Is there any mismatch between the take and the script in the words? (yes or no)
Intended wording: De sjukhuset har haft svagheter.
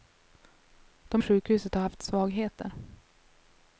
no